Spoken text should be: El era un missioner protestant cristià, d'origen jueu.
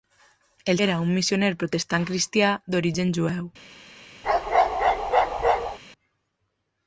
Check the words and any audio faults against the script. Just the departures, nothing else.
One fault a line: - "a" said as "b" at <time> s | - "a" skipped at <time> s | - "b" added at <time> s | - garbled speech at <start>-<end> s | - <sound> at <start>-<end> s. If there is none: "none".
- bark at 4.2-5.8 s